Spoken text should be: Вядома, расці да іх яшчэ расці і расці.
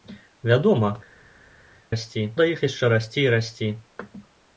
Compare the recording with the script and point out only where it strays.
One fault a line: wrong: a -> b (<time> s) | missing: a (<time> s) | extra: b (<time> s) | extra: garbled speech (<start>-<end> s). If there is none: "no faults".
no faults